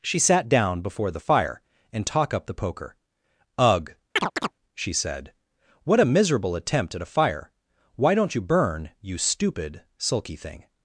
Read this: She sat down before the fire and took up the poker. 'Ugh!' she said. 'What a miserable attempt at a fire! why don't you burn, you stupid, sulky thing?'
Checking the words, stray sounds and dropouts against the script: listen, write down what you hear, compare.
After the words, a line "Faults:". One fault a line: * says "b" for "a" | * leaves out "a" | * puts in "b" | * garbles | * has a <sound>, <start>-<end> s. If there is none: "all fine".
She sat down before the fire and talk up the poker. 'Ugh!' she said. 'What a miserable attempt at a fire! why don't you burn, you stupid, sulky thing?'
Faults:
* says "talk" for "took"
* has a chirp, 4.2-4.5 s